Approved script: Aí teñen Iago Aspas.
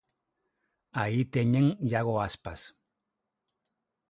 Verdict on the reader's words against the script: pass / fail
pass